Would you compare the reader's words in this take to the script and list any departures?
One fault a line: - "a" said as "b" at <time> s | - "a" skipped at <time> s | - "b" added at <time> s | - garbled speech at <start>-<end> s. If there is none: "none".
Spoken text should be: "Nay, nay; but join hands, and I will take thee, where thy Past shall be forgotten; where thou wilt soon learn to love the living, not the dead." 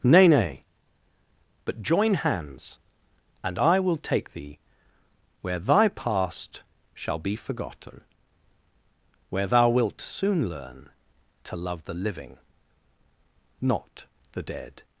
none